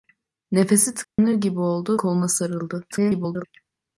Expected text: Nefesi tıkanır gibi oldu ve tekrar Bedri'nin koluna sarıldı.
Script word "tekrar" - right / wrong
wrong